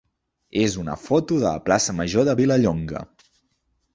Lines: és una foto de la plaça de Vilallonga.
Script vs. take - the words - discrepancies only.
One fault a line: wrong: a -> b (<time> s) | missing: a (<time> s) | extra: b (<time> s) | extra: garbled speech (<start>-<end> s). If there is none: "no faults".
extra: major (2.0 s)